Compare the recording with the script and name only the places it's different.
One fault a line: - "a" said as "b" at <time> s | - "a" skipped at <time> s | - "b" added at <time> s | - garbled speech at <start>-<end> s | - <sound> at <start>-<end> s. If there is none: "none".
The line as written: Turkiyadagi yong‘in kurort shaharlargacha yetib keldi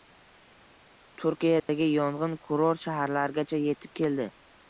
- dropout at 1.6-1.7 s